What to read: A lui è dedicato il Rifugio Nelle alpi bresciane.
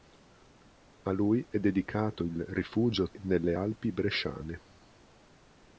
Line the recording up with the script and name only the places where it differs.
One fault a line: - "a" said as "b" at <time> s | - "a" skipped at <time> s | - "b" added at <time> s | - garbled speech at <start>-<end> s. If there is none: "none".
none